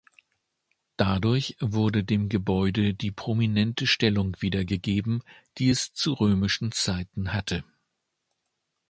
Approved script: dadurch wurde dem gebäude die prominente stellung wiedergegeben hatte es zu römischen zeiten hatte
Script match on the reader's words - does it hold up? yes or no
no